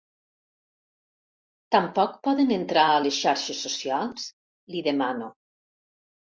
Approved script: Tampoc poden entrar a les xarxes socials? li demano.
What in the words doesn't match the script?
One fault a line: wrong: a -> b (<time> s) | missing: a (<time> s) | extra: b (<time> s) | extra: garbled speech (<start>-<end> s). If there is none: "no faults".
no faults